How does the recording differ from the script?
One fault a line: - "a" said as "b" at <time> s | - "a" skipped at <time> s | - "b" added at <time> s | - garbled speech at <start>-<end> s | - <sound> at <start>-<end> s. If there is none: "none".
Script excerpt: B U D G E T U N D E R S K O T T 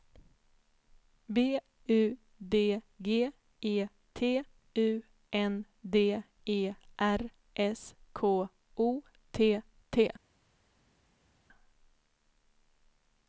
none